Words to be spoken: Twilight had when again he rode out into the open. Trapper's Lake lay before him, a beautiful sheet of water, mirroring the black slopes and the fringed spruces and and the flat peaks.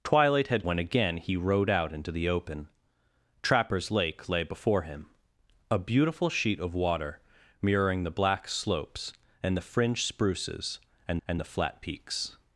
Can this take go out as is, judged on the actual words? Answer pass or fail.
pass